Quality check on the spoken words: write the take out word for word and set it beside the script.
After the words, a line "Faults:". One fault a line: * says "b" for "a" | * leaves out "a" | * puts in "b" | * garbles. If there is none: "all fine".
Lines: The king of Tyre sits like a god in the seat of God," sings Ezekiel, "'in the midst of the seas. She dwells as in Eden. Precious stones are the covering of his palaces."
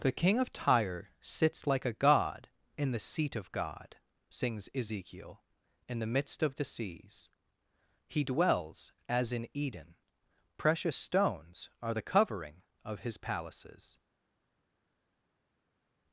The king of Tyre sits like a god in the seat of God," sings Ezekiel, "'in the midst of the seas. He dwells as in Eden. Precious stones are the covering of his palaces."
Faults:
* says "He" for "She"